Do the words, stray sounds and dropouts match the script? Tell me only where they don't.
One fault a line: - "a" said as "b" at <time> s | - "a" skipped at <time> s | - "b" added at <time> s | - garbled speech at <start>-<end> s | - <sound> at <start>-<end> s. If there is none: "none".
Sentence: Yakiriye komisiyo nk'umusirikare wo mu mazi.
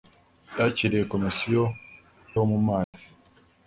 - "nk'umusirikare" skipped at 1.6 s
- dropout at 2.8-2.9 s